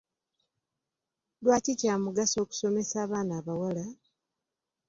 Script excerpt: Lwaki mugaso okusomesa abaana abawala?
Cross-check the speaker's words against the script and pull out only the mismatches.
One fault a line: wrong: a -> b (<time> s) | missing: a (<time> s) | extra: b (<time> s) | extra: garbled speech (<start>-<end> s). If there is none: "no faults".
extra: kya (1.8 s)